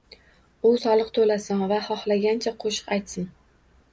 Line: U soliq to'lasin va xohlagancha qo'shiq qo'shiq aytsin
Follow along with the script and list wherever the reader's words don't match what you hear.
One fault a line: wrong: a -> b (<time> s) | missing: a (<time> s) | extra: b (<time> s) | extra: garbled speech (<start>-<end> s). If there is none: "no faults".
missing: qo'shiq (2.9 s)